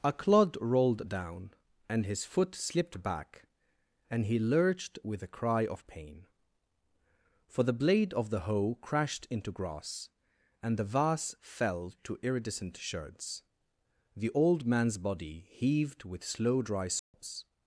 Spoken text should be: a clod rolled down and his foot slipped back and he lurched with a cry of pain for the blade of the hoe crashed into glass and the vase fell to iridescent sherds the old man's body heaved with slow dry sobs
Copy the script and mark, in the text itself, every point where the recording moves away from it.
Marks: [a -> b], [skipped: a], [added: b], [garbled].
a clod rolled down and his foot slipped back and he lurched with a cry of pain for the blade of the hoe crashed into [glass -> grass] and the vase fell to iridescent sherds the old man's body heaved with slow dry sobs